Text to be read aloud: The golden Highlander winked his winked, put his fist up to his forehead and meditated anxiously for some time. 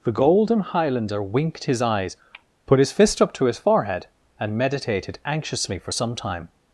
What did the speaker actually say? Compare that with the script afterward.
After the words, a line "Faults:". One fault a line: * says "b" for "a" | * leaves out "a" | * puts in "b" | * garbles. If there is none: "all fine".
The golden Highlander winked his eyes, put his fist up to his forehead and meditated anxiously for some time.
Faults:
* says "eyes" for "winked"